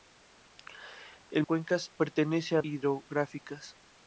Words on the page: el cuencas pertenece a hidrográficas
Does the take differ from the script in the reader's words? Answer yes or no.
no